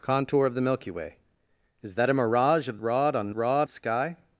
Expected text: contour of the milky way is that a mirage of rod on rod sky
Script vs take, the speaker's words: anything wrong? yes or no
no